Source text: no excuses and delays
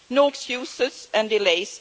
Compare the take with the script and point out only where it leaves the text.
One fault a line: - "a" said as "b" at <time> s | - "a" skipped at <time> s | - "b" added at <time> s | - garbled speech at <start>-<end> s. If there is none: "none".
none